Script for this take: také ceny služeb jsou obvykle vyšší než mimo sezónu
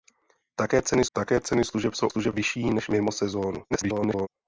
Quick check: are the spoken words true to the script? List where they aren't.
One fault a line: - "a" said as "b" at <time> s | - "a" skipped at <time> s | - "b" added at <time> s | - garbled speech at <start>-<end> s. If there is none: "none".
- "také ceny" added at 1.1 s
- "obvykle" said as "služeb" at 2.1 s
- garbled speech at 3.7-4.3 s